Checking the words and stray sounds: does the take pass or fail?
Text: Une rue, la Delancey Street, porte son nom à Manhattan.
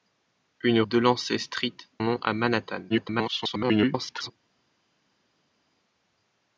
fail